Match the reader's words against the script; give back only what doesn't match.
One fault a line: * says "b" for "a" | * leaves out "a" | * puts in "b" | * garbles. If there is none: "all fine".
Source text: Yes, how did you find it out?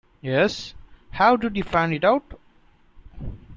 all fine